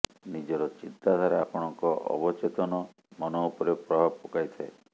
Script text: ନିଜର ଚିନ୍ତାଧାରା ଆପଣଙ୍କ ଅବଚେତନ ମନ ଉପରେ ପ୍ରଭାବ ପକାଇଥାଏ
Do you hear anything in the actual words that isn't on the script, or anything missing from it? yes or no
no